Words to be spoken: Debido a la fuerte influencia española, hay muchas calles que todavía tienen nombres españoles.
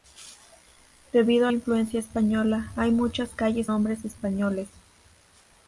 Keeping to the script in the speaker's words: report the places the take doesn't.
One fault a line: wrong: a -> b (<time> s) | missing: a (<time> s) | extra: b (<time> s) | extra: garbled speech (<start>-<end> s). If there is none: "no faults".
missing: la fuerte (1.5 s)
missing: que todavía tienen (3.7 s)